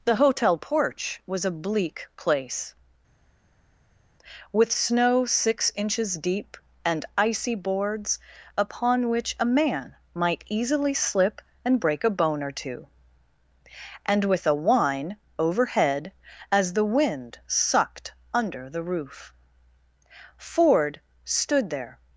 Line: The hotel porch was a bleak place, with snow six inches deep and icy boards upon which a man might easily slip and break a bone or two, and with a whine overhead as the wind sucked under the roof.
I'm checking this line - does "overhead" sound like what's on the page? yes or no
yes